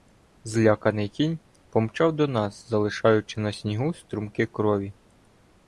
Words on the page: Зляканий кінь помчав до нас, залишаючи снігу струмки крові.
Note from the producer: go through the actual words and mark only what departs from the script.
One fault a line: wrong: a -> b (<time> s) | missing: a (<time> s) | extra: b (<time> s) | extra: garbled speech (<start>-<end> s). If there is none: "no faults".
extra: на (3.4 s)